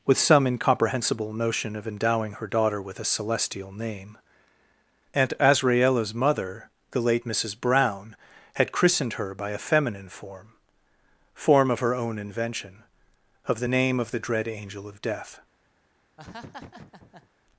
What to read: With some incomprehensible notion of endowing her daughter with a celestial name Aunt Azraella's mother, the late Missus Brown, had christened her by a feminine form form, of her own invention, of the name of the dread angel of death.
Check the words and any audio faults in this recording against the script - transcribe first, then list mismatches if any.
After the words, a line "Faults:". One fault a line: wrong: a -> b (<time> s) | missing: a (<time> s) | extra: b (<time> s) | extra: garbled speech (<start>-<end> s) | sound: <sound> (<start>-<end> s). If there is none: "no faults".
With some incomprehensible notion of endowing her daughter with a celestial name Aunt Azraella's mother, the late Missus Brown, had christened her by a feminine form form, of her own invention, of the name of the dread angel of death.
Faults:
sound: laugh (16.2-17.3 s)